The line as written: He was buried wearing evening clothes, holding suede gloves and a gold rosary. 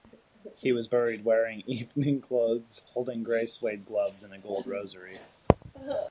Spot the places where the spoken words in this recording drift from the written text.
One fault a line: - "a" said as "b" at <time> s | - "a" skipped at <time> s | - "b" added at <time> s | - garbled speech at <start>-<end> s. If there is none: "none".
- "grey" added at 3.2 s